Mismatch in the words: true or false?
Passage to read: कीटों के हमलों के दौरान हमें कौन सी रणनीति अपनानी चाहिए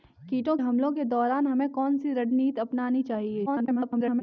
true